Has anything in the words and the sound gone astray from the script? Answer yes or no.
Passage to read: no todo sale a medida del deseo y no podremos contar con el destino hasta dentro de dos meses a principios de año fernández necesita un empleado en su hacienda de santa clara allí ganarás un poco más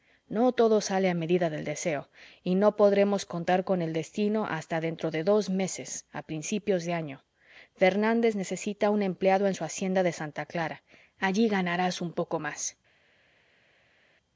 no